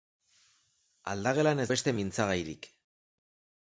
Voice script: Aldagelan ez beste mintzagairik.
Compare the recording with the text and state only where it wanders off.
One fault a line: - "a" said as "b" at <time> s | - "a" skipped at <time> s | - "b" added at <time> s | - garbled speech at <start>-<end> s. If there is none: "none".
none